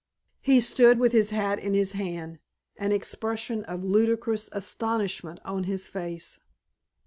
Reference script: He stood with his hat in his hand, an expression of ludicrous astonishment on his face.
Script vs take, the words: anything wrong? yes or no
no